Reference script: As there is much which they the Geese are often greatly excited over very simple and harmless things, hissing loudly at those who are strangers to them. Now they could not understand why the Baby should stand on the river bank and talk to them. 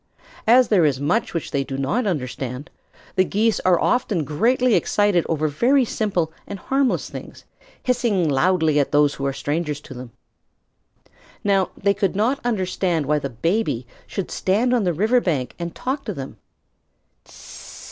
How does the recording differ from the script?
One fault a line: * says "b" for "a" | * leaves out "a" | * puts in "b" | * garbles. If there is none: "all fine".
* puts in "do not understand"